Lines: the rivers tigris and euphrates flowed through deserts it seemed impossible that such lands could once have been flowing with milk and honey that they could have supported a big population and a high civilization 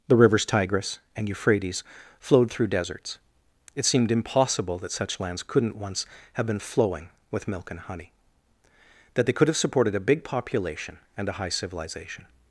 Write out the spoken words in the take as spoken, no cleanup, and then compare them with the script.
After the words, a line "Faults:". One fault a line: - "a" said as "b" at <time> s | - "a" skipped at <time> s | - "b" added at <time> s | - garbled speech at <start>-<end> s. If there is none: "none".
the rivers tigris and euphrates flowed through deserts it seemed impossible that such lands couldn't once have been flowing with milk and honey that they could have supported a big population and a high civilization
Faults:
- "could" said as "couldn't" at 5.4 s